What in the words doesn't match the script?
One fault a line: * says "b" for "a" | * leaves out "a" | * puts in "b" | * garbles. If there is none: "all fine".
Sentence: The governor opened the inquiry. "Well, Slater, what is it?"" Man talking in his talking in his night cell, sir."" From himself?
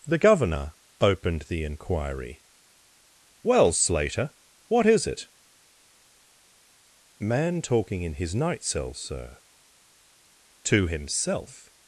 * leaves out "talking in his"
* says "To" for "From"